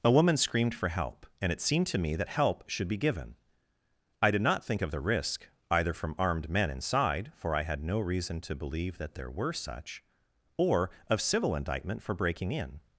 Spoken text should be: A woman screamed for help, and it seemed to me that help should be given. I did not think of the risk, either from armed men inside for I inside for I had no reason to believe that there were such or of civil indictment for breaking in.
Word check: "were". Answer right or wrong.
right